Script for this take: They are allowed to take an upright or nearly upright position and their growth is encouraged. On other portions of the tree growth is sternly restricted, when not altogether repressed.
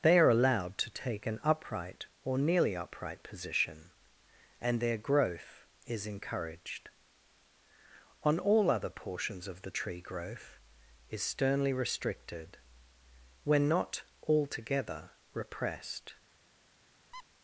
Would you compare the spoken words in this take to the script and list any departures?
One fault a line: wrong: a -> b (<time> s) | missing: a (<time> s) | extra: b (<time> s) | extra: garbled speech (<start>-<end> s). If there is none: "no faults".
extra: all (8.4 s)